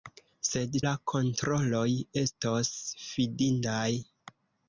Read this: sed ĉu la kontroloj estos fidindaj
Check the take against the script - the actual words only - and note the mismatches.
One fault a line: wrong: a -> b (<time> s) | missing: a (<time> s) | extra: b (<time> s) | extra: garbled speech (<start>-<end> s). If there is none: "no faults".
missing: ĉu (0.8 s)